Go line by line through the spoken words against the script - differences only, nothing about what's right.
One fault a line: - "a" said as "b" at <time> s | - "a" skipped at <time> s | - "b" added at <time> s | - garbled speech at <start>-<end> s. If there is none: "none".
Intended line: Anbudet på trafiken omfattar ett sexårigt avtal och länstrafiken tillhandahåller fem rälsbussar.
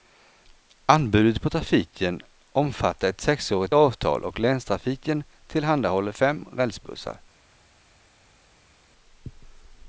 none